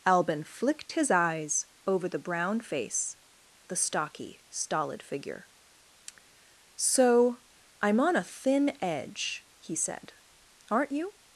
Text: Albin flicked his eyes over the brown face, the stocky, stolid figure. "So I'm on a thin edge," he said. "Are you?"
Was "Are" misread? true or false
true